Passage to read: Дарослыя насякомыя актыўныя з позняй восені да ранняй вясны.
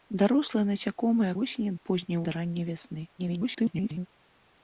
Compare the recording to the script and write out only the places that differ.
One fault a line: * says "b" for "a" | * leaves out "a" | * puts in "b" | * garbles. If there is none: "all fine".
* says "восені" for "актыўныя"
* leaves out "восені"
* garbles